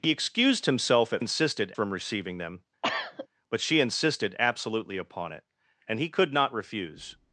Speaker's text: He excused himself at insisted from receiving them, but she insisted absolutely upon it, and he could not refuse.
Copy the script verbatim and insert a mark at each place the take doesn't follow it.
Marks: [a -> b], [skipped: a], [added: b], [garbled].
He excused himself at insisted from receiving them, but she insisted absolutely upon it, and he could not refuse.